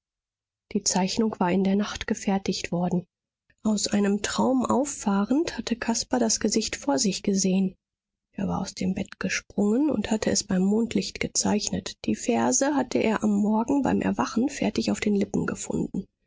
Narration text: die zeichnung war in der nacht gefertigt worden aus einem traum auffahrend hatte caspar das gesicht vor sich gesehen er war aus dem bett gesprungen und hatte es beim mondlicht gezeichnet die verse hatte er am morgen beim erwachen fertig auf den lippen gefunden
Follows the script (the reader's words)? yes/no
yes